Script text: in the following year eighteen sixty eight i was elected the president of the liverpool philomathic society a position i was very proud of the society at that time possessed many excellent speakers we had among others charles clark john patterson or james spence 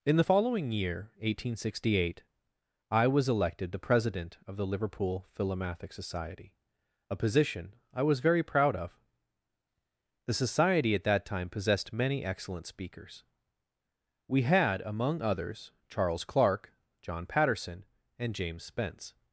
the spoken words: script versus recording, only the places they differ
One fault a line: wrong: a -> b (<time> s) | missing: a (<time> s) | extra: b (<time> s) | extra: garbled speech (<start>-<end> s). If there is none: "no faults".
wrong: or -> and (18.2 s)